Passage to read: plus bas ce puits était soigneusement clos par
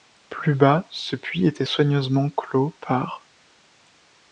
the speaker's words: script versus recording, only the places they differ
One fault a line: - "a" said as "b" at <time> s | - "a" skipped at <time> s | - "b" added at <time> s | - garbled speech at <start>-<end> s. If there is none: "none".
none